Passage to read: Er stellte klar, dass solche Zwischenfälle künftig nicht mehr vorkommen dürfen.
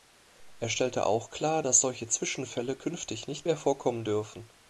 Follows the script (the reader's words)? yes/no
no